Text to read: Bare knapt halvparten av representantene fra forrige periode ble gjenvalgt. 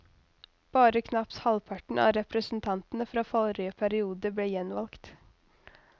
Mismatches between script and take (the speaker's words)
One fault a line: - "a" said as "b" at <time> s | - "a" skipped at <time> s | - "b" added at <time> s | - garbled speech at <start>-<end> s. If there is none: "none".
none